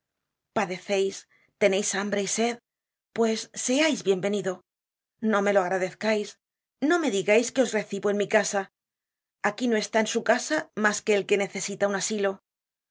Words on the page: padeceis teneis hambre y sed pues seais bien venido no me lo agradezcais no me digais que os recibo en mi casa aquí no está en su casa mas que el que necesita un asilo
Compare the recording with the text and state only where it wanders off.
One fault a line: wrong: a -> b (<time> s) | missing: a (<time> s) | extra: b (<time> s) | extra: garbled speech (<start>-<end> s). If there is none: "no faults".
no faults